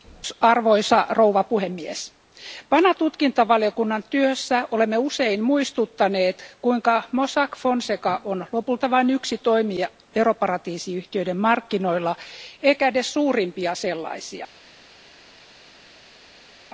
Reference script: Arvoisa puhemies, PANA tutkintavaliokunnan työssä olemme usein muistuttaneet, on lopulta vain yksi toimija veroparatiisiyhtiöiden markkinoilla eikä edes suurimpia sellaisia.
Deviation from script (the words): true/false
true